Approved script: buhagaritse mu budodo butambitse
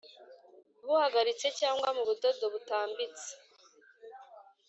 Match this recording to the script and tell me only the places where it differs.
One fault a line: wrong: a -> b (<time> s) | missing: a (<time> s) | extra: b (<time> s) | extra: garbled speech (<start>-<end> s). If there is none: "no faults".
extra: cyangwa (1.6 s)